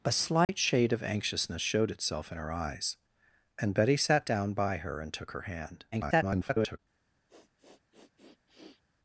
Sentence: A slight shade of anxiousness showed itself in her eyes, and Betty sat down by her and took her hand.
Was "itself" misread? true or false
false